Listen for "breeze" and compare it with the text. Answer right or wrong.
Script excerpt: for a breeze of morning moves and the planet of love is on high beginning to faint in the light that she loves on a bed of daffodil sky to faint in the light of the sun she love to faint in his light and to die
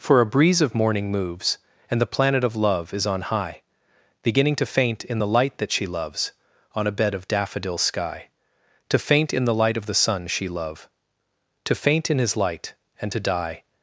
right